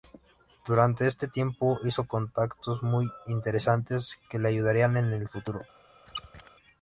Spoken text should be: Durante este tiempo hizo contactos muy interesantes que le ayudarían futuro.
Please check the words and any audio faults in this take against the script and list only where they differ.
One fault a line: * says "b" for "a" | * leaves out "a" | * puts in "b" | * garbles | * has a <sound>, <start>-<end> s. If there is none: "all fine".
* puts in "en el"
* has a squeak, 6.1-6.5 s